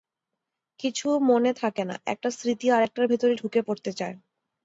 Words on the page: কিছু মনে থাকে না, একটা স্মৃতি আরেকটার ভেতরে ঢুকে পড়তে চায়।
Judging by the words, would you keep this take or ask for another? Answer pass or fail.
pass